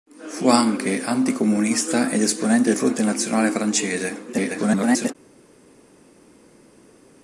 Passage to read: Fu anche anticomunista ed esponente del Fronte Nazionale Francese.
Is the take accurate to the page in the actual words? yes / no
no